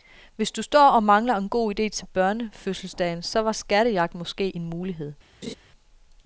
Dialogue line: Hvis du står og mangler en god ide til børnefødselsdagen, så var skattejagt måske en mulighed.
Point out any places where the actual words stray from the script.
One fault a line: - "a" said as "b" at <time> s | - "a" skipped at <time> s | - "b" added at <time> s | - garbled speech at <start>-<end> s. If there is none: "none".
none